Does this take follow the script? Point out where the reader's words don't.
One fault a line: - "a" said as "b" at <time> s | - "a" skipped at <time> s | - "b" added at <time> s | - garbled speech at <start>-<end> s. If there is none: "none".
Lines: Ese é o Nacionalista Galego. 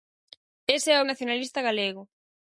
none